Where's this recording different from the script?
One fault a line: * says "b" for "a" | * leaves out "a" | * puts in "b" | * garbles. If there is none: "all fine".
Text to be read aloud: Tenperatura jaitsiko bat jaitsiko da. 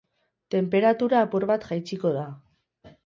* says "apur" for "jaitsiko"